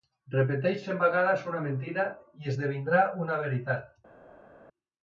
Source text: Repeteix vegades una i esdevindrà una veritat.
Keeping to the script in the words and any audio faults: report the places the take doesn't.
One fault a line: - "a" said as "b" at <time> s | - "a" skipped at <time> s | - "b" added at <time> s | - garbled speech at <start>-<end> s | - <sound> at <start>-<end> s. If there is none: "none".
- "cent" added at 0.8 s
- "mentida" added at 1.7 s